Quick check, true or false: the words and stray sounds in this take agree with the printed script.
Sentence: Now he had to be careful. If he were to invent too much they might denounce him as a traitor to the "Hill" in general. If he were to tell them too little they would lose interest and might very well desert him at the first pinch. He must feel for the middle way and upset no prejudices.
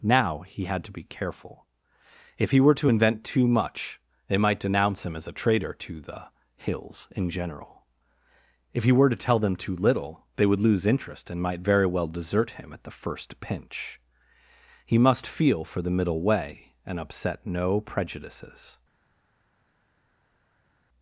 false